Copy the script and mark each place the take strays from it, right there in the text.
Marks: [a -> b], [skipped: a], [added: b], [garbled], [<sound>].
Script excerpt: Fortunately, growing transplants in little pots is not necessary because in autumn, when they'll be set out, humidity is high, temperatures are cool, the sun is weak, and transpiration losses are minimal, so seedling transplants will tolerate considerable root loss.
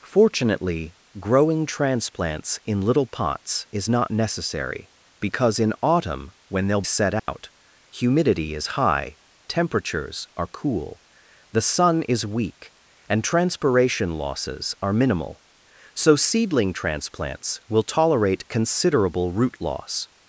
Fortunately, growing transplants in little pots is not necessary because in autumn, when they'll [skipped: be] set out, [dropout] humidity is high, temperatures are cool, the sun is weak, and transpiration losses are minimal, so seedling transplants will tolerate considerable root loss.